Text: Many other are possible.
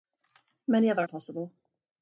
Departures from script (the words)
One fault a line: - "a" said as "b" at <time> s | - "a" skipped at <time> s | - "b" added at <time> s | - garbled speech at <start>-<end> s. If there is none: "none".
none